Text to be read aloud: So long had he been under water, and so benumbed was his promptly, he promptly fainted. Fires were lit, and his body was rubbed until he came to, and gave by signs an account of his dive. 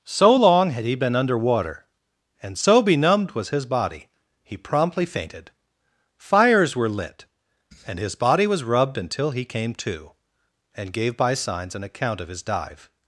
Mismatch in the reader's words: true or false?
true